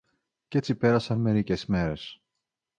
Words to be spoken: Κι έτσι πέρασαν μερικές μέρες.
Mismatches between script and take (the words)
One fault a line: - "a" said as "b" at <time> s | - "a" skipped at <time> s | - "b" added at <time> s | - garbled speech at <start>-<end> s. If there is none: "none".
none